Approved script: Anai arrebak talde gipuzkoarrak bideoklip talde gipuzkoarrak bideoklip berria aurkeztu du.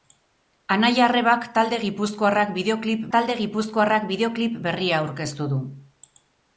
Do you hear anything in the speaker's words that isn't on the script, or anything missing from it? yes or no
no